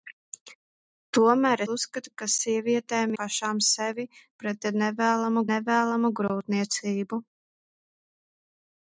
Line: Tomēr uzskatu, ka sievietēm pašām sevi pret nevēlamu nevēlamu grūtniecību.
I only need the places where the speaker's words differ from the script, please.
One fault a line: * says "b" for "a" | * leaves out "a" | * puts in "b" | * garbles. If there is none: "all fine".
all fine